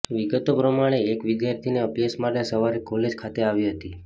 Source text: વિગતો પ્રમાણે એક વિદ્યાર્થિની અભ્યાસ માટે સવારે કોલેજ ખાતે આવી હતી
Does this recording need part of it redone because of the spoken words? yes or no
no